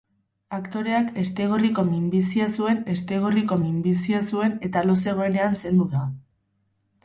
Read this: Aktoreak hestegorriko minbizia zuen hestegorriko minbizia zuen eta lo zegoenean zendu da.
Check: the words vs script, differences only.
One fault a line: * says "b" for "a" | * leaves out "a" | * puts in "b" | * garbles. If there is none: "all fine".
all fine